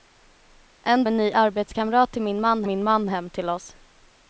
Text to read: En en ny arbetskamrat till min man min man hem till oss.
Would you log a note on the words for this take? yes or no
no